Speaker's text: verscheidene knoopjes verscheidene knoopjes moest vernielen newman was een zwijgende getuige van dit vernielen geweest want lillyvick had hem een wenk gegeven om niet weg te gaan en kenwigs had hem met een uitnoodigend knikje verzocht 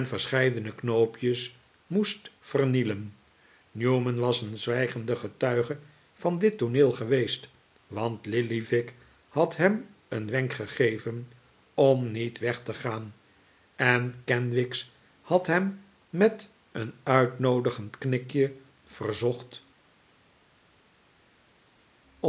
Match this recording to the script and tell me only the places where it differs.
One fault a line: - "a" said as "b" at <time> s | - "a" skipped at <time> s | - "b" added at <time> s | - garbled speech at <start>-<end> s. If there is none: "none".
- "verscheidene knoopjes" skipped at 1.6 s
- "vernielen" said as "tooneel" at 6.6 s